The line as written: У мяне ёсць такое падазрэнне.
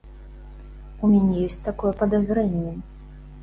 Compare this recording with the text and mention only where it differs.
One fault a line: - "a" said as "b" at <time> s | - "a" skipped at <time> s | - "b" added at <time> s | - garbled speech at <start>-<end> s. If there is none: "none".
none